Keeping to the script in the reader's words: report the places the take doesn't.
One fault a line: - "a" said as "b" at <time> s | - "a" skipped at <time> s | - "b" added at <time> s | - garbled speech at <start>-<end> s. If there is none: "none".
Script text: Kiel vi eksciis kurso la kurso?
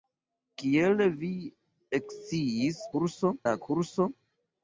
none